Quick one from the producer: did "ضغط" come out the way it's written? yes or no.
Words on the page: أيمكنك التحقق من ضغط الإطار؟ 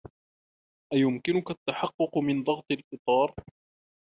yes